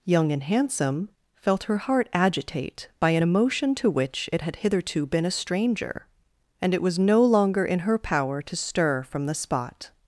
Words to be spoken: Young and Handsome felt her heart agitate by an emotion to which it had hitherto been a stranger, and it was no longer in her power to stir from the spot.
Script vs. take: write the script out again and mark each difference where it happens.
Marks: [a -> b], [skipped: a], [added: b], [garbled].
Young and Handsome felt her heart agitate by an emotion to which it had hitherto been a stranger, and it was no longer in her power to stir from the spot.